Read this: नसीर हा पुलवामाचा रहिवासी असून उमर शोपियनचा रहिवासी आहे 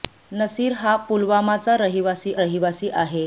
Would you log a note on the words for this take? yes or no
yes